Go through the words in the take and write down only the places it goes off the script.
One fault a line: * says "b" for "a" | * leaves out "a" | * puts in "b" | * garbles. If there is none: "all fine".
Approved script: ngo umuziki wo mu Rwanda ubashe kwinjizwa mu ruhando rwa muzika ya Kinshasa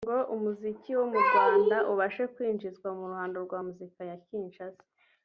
all fine